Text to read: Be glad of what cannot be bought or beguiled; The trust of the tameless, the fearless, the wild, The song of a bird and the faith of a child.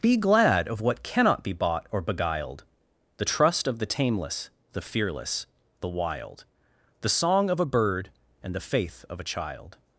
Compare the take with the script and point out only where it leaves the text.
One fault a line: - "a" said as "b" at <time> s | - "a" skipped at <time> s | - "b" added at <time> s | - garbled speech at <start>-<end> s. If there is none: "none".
none